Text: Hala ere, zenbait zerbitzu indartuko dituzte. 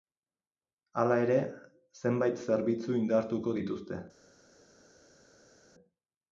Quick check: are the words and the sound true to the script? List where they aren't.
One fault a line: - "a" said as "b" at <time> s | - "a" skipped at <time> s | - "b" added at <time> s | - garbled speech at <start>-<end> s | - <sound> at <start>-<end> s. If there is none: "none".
none